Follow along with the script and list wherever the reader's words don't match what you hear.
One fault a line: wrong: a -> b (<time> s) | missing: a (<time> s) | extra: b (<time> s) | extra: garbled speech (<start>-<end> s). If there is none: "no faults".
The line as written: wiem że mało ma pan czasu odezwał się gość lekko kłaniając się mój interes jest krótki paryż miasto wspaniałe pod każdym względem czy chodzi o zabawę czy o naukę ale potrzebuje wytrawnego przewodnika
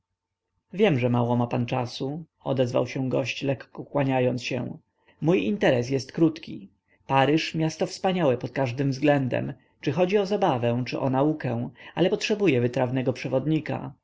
no faults